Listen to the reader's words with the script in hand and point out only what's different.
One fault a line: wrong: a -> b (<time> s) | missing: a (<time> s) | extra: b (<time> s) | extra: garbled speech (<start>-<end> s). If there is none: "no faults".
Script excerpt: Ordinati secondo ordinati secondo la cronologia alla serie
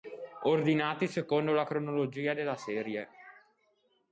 missing: ordinati secondo (1.5 s)
wrong: alla -> della (2.3 s)